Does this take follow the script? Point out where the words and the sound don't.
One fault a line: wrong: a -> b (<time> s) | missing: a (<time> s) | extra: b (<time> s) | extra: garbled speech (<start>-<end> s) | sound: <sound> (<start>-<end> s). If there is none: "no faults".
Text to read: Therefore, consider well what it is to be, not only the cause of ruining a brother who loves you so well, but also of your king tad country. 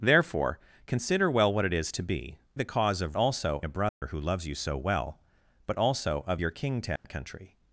missing: not only (2.4 s)
wrong: ruining -> also (3.2 s)
sound: dropout (3.9-4.0 s)
sound: dropout (7.0-7.0 s)